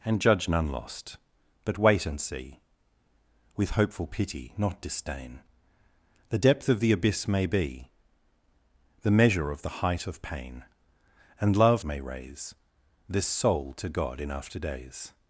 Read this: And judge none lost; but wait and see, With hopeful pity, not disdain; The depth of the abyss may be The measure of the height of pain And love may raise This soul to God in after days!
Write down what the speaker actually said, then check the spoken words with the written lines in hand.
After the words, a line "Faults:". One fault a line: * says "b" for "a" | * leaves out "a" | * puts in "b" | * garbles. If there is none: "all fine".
And judge none lost; but wait and see, With hopeful pity, not disdain; The depth of the abyss may be The measure of the height of pain And love may raise This soul to God in after days!
Faults:
all fine